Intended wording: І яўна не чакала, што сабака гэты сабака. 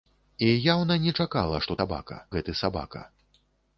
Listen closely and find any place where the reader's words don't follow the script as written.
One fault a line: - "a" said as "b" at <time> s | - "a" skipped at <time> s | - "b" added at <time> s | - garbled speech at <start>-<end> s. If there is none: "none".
none